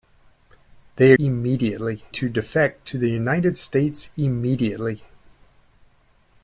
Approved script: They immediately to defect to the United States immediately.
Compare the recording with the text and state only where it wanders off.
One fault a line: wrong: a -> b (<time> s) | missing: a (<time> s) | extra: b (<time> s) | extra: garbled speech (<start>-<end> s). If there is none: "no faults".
no faults